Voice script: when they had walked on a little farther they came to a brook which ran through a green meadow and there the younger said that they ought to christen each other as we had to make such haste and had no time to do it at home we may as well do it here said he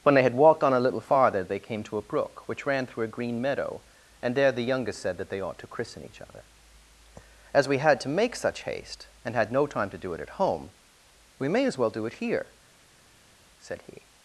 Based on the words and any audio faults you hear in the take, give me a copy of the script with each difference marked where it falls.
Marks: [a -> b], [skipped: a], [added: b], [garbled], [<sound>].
when they had walked on a little farther they came to a brook which ran through a green meadow and there the [younger -> youngest] said that they ought to christen each other as we had to make such haste and had no time to do it at home we may as well do it here said he